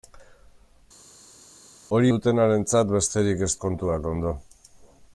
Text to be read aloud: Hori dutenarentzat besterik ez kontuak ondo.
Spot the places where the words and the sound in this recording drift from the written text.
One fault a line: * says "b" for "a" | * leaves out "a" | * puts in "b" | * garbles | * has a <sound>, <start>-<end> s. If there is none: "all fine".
all fine